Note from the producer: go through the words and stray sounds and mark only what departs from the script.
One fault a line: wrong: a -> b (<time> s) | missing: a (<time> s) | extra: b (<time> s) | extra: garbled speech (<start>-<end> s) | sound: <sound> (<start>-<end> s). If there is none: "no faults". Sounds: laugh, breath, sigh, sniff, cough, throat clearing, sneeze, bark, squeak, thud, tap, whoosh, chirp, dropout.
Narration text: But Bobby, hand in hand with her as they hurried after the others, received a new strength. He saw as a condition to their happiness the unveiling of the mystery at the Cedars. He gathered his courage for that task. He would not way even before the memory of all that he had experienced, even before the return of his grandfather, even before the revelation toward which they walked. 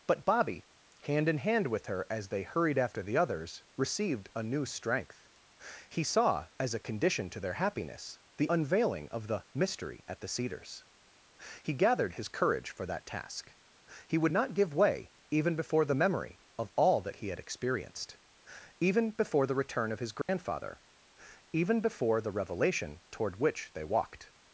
extra: give (14.5 s)
sound: dropout (20.2-20.3 s)